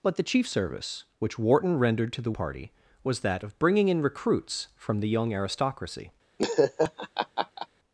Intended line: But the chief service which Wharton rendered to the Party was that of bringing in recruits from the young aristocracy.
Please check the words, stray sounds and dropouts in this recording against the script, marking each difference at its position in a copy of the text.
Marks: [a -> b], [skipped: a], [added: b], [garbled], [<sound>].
But the chief service which Wharton rendered to the Party was that of bringing in recruits from the young aristocracy. [laugh]